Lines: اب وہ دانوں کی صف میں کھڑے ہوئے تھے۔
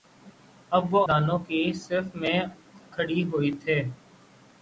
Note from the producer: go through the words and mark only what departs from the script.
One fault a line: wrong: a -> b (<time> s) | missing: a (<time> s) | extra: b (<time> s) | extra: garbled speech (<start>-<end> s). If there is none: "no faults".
no faults